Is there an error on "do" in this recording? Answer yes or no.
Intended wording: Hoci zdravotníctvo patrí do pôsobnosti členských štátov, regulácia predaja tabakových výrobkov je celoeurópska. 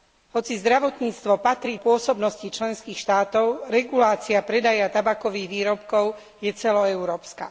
yes